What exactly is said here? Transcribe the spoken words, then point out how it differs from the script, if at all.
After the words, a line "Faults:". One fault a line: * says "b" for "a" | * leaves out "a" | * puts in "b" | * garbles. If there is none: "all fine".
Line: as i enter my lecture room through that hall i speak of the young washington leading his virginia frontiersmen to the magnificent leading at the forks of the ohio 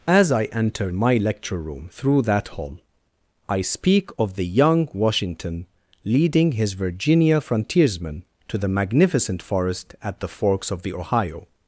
as i enter my lecture room through that hall i speak of the young washington leading his virginia frontiersmen to the magnificent forest at the forks of the ohio
Faults:
* says "forest" for "leading"